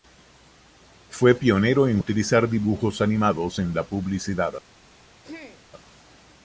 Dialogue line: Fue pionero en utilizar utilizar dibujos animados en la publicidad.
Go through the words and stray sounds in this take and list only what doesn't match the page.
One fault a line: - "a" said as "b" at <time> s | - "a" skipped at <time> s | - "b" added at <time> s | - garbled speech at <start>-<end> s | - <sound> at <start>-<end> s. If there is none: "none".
- "utilizar" skipped at 2.5 s
- throat clearing at 5.2-5.6 s